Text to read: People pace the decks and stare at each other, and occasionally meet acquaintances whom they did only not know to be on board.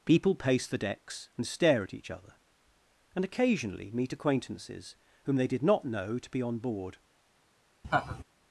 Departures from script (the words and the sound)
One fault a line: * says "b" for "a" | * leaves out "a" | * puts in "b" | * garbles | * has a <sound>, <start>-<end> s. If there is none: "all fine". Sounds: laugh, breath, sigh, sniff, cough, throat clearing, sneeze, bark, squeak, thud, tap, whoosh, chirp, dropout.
* leaves out "only"
* has a laugh, 7.8-8.2 s